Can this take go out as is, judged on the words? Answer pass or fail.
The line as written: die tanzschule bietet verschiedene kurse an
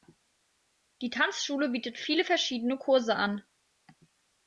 fail